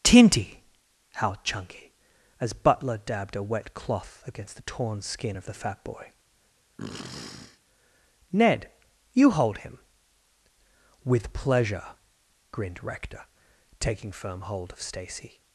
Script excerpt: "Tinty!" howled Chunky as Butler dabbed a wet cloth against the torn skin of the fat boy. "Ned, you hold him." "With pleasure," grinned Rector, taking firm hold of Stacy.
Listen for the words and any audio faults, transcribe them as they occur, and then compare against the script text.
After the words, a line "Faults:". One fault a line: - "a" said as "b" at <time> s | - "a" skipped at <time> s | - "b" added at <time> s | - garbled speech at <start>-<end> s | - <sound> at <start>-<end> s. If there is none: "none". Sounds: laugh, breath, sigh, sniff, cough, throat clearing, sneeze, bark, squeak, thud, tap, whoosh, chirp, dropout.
"Tinty!" howled Chunky as Butler dabbed a wet cloth against the torn skin of the fat boy. "Ned, you hold him." "With pleasure," grinned Rector, taking firm hold of Stacy.
Faults:
- sniff at 6.8-7.6 s